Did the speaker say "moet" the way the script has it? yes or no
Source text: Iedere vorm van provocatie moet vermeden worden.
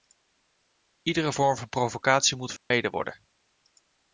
yes